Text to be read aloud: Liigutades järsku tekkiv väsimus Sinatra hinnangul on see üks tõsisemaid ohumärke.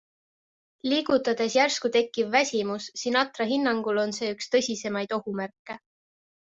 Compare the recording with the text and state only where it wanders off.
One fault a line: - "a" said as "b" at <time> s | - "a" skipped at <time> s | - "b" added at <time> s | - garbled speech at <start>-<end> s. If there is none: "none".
none